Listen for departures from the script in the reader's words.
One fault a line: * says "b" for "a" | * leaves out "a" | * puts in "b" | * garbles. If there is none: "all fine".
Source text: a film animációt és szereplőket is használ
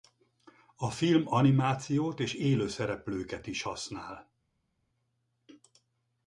* puts in "élő"